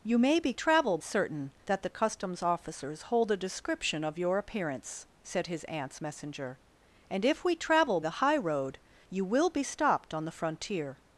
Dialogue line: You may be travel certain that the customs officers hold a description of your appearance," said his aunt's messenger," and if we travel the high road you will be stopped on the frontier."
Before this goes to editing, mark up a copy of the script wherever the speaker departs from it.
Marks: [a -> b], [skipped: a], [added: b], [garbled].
You may be travel certain that the customs officers hold a description of your appearance," said his aunt's messenger," and if we travel the high road you will be stopped on the frontier."